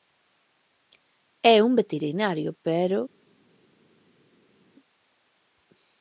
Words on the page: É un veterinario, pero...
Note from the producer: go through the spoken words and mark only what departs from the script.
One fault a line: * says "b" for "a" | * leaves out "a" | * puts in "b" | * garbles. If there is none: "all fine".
all fine